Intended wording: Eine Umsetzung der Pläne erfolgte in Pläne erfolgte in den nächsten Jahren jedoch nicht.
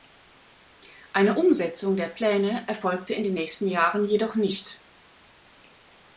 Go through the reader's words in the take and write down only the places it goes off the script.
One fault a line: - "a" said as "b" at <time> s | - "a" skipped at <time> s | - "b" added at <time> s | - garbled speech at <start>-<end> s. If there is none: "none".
- "Pläne erfolgte in" skipped at 3.2 s